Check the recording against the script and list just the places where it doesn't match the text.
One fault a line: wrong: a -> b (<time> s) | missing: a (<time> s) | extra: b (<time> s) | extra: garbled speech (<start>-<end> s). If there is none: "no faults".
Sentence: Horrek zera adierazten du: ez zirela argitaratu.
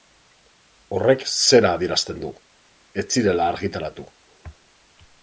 no faults